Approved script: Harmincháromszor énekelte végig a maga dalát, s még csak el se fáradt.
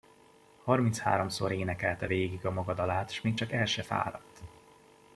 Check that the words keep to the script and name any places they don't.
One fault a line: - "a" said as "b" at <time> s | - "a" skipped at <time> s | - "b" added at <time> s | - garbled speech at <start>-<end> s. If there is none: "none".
none